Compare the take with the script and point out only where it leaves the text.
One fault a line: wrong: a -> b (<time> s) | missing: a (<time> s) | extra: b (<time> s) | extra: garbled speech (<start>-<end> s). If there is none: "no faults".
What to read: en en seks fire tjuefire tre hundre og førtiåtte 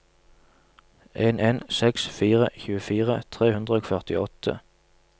no faults